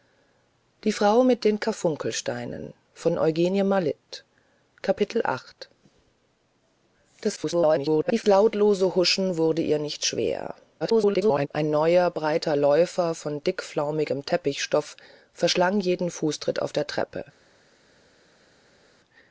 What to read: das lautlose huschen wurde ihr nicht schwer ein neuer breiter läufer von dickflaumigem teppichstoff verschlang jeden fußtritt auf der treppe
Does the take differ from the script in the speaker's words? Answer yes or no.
yes